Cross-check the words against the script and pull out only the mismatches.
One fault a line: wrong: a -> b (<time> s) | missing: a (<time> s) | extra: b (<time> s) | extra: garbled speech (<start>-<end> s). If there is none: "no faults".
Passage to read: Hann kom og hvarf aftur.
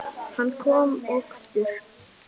missing: hvarf (1.2 s)